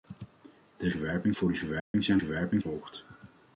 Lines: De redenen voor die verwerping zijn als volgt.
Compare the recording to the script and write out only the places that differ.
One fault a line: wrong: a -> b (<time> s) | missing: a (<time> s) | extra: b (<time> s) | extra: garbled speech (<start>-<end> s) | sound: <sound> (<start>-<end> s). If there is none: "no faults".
wrong: redenen -> verwerping (0.9 s)
sound: dropout (1.8-1.9 s)
wrong: als -> verwerping (2.2 s)